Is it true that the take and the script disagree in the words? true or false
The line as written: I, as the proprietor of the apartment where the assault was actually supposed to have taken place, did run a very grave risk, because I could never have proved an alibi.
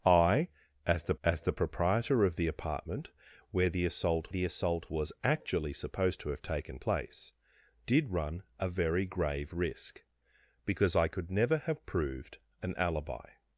true